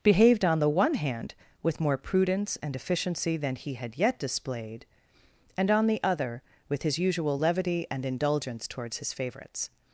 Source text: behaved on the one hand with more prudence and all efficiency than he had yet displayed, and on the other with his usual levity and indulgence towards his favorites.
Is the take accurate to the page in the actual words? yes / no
no